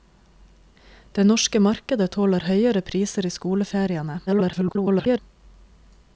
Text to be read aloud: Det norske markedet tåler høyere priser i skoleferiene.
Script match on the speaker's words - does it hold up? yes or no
no